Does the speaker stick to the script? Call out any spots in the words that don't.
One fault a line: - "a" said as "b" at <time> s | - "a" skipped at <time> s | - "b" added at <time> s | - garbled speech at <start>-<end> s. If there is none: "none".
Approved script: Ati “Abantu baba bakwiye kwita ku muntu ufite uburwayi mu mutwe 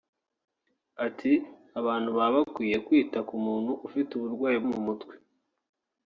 none